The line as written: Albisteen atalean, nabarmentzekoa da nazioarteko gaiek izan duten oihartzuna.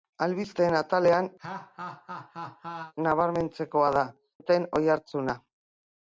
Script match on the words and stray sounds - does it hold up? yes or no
no